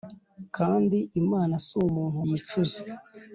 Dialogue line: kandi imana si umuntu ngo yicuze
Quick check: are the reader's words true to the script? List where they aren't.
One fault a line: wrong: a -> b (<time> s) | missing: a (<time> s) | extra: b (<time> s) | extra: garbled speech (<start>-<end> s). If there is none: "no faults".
missing: ngo (2.2 s)